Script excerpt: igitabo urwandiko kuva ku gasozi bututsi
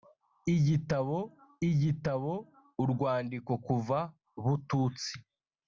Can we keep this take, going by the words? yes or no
no